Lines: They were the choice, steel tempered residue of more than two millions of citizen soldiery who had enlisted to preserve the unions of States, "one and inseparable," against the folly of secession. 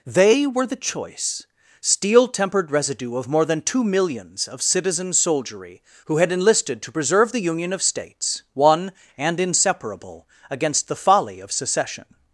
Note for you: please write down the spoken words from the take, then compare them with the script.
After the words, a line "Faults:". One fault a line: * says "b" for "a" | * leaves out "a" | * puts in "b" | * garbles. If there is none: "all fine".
They were the choice, steel tempered residue of more than two millions of citizen soldiery who had enlisted to preserve the union of States, "one and inseparable," against the folly of secession.
Faults:
* says "union" for "unions"